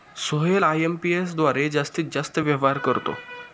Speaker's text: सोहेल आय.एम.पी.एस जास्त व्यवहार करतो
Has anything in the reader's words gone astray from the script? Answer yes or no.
yes